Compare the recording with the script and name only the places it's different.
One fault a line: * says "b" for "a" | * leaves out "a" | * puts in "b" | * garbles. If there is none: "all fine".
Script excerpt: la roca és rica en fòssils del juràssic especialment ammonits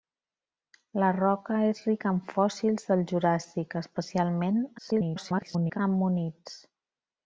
* garbles